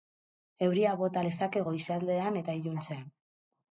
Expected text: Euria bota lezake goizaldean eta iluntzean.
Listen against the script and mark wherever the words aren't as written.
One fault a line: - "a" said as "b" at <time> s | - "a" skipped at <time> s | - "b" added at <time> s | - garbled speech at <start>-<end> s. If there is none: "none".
none